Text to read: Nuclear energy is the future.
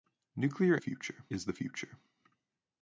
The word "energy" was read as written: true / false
false